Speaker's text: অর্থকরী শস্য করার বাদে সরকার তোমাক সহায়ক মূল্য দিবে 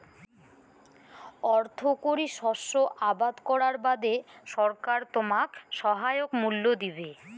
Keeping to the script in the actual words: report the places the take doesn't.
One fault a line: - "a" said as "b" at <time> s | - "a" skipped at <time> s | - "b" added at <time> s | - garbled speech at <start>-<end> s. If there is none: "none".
- "আবাদ" added at 3.1 s